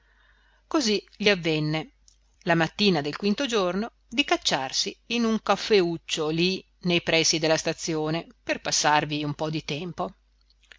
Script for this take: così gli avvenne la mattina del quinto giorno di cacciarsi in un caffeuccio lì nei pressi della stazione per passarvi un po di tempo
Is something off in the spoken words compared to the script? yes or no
no